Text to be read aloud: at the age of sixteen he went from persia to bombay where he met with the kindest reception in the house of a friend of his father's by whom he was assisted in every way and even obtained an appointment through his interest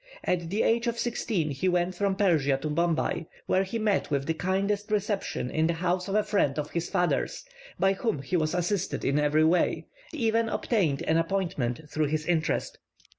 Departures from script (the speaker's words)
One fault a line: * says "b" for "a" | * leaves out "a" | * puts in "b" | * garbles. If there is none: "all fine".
* leaves out "and"